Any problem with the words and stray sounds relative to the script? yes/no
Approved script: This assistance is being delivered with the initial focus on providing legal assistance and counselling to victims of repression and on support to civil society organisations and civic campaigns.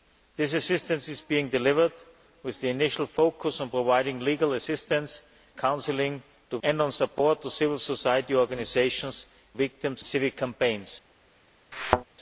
yes